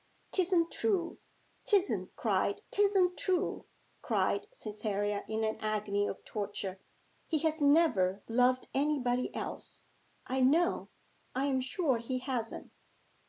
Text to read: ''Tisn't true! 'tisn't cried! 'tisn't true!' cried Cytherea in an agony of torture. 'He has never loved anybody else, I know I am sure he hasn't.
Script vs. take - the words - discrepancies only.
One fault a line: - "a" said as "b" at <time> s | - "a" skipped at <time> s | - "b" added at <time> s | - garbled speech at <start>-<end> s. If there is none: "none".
none